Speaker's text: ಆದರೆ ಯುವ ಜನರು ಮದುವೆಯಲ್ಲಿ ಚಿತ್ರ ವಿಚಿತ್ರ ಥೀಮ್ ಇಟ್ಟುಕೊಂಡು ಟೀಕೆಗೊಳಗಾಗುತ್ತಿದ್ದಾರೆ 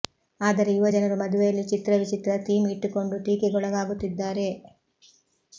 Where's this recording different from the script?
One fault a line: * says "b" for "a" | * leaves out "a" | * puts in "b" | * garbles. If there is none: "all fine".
all fine